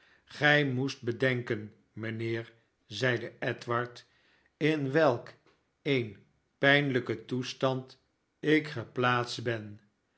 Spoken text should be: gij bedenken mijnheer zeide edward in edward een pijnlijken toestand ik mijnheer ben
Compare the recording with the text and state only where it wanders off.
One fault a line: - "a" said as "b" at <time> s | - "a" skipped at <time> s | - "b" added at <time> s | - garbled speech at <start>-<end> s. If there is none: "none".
- "moest" added at 0.7 s
- "edward" said as "welk" at 4.9 s
- "mijnheer" said as "geplaatst" at 8.7 s